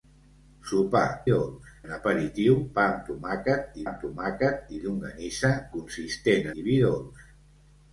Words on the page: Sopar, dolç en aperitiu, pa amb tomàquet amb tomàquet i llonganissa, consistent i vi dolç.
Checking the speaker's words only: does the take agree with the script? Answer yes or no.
yes